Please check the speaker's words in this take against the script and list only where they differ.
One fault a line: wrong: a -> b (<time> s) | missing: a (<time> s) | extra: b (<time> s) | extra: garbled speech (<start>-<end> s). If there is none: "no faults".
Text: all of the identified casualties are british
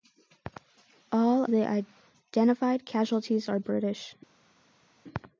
missing: of (1.4 s)